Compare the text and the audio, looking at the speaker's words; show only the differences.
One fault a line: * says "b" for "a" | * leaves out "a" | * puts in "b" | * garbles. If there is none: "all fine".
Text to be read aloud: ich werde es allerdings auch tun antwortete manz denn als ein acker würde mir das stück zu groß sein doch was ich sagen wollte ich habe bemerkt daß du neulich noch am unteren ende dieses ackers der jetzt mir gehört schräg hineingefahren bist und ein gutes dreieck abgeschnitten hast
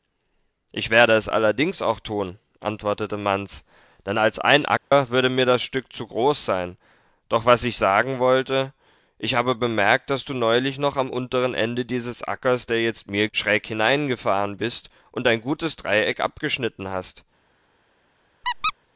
* leaves out "gehört"